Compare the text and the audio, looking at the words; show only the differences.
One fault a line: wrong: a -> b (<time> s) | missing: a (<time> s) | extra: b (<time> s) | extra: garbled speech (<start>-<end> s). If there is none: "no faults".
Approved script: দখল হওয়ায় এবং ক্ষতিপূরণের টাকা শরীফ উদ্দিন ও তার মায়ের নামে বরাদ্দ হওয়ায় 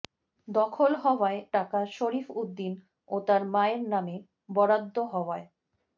missing: এবং ক্ষতিপূরণের (1.4 s)